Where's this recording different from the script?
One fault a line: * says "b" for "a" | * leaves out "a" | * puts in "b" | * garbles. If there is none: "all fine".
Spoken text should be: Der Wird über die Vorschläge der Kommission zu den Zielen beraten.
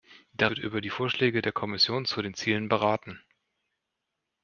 all fine